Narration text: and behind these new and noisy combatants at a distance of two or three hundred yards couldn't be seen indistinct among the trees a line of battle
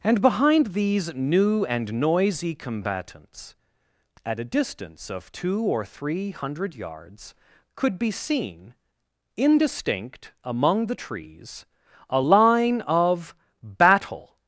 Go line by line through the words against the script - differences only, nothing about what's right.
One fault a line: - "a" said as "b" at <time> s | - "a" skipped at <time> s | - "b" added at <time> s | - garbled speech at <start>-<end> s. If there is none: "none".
- "couldn't" said as "could" at 7.7 s